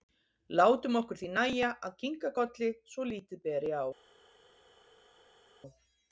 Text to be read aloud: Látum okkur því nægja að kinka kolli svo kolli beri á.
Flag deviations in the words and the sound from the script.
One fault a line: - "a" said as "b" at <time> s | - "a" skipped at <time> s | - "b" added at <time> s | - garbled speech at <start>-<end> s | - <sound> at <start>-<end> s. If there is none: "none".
- "kolli" said as "lítið" at 3.1 s